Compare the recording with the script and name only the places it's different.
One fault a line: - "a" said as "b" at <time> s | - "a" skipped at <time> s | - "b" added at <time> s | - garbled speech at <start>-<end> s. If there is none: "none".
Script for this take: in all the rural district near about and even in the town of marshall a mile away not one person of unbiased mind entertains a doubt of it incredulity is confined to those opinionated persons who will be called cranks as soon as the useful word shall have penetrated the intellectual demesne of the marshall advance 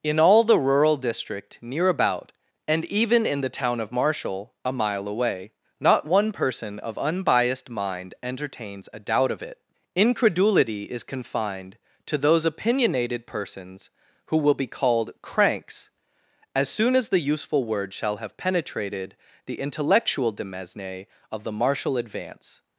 none